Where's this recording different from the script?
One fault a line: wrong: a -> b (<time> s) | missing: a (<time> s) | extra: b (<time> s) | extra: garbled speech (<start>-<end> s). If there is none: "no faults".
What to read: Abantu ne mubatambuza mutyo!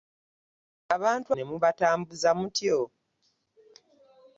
no faults